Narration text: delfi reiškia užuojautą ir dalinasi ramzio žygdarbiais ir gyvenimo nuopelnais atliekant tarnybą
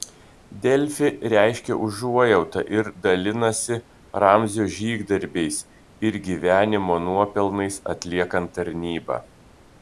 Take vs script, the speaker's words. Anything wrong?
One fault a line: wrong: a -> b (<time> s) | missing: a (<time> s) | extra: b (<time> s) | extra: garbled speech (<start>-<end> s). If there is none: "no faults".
no faults